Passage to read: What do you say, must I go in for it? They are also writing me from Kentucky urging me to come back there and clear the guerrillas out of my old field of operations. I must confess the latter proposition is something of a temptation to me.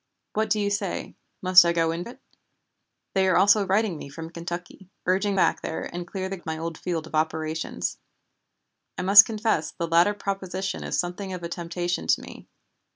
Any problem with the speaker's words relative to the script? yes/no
yes